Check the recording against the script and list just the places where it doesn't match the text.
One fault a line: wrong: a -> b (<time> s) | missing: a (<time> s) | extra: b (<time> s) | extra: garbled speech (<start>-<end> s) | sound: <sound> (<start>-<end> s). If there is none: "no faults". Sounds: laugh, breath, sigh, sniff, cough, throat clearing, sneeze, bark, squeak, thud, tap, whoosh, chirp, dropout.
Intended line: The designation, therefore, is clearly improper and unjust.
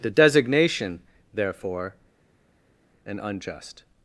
missing: is clearly improper (1.9 s)